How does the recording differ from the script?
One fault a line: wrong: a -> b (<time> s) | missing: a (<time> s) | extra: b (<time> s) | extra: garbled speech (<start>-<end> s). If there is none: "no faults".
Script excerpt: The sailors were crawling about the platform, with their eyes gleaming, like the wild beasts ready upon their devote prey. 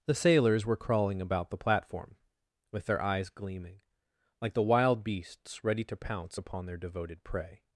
extra: to pounce (5.8 s)
wrong: devote -> devoted (6.8 s)